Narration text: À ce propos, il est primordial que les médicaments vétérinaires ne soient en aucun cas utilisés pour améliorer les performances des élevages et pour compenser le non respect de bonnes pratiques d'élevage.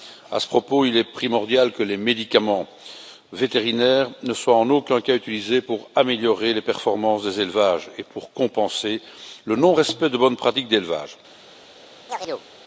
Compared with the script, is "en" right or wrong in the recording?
right